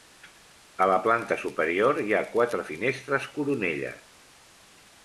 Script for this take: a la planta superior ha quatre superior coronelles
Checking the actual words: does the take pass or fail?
fail